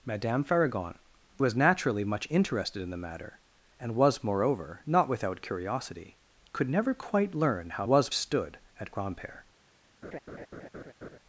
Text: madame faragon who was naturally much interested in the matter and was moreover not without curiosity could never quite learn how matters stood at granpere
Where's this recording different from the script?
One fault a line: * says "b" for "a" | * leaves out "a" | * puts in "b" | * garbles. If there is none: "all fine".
* leaves out "who"
* says "was" for "matters"